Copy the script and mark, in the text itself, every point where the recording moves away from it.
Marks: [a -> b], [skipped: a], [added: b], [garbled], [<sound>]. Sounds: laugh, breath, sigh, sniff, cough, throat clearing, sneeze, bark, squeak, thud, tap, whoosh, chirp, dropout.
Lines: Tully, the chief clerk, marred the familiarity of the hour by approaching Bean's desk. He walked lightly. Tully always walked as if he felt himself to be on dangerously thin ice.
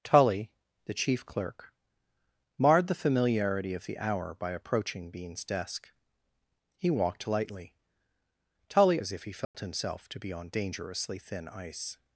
Tully, the chief clerk, marred the familiarity of the hour by approaching Bean's desk. He walked lightly. Tully [skipped: always walked] as if he felt [dropout] himself to be on dangerously thin ice.